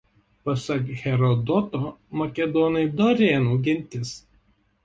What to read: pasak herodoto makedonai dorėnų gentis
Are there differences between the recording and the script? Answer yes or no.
no